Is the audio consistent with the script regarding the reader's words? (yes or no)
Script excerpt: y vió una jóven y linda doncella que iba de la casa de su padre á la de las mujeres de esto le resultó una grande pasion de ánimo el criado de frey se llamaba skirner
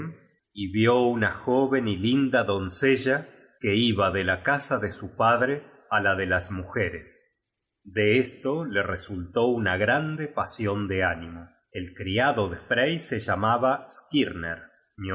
yes